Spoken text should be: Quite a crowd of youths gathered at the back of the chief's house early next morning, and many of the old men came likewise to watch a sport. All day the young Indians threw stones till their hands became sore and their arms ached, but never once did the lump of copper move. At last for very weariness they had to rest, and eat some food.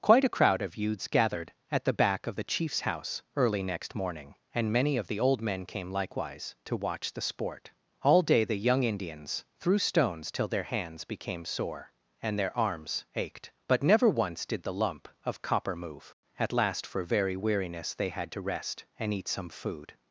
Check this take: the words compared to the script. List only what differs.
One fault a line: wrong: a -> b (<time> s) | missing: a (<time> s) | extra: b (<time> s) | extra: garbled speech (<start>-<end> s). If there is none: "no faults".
wrong: a -> the (7.1 s)